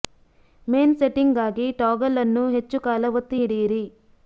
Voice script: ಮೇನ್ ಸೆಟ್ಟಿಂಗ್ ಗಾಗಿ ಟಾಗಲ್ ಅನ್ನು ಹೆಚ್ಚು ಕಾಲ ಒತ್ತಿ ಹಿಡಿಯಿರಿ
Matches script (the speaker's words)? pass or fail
pass